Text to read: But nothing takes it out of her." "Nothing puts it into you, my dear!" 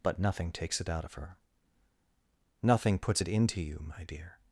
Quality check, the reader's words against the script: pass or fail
pass